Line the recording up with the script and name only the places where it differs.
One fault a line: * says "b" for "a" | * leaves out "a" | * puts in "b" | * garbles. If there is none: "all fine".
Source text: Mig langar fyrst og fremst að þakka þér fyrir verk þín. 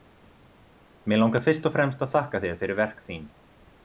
all fine